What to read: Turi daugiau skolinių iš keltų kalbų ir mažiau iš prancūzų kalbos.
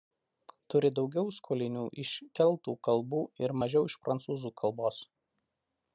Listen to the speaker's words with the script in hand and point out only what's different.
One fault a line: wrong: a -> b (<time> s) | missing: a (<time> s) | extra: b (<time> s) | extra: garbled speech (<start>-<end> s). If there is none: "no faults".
no faults